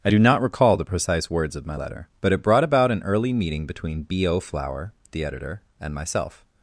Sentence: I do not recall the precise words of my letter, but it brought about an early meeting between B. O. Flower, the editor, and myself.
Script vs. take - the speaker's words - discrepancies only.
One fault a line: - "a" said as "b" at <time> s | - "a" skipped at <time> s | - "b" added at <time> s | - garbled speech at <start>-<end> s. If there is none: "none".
none